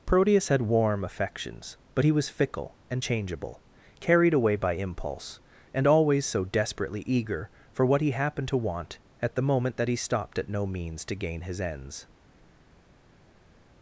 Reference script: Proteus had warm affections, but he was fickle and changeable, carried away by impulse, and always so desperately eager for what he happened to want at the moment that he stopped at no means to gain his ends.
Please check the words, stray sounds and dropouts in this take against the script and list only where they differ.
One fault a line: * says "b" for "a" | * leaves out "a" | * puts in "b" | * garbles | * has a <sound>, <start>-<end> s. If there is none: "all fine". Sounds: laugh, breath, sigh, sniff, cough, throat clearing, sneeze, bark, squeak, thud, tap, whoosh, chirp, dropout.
all fine